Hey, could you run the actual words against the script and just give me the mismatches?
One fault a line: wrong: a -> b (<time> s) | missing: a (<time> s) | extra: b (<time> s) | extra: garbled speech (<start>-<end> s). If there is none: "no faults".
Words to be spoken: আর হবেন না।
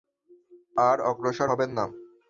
extra: অগ্রসর (1.1 s)